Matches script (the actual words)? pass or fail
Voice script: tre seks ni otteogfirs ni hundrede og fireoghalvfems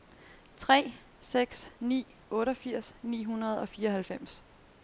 pass